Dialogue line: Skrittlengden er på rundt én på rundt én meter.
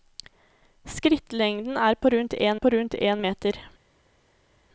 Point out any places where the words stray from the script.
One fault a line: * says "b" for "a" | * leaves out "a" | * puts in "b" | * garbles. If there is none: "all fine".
all fine